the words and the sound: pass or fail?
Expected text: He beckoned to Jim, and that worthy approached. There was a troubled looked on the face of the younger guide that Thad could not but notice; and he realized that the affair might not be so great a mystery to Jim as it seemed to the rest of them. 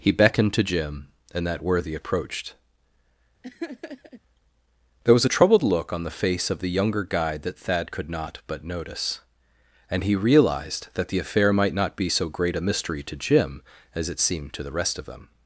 fail